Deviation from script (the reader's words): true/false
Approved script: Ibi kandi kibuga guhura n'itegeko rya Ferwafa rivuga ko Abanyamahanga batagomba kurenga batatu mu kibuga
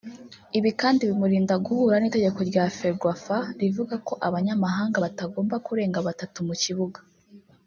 true